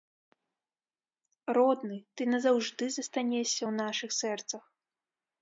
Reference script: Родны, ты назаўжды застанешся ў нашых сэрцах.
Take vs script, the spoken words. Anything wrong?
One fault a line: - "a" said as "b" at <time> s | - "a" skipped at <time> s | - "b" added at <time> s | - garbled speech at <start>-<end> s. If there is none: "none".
none